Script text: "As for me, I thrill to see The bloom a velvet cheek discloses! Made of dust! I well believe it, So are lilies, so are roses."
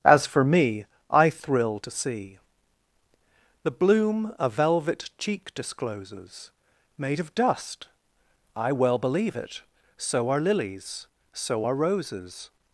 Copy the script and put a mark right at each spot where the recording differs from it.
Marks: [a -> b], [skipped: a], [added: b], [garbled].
"As for me, I thrill to see The bloom a velvet cheek discloses! Made of dust! I well believe it, So are lilies, so are roses."